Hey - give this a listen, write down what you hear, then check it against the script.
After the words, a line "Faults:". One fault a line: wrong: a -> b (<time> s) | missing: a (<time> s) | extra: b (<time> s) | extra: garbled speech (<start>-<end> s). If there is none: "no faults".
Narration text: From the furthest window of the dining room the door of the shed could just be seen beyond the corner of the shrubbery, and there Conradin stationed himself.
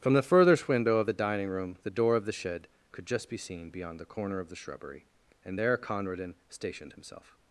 From the furthest window of the dining room the door of the shed could just be seen beyond the corner of the shrubbery, and there Conradin stationed himself.
Faults:
no faults